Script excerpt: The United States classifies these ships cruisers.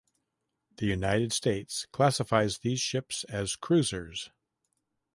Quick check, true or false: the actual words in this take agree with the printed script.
false